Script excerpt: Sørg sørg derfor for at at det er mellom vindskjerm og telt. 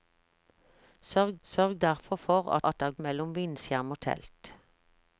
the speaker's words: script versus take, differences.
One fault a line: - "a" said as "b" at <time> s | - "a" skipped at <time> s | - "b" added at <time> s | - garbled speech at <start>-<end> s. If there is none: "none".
none